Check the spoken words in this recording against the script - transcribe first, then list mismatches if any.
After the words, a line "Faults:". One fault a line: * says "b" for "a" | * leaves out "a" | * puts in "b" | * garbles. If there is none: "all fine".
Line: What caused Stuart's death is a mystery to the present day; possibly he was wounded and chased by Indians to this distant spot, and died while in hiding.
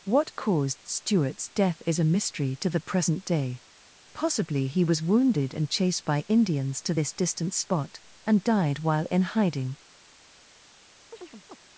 What caused Stuart's death is a mystery to the present day; possibly he was wounded and chased by Indians to this distant spot, and died while in hiding.
Faults:
all fine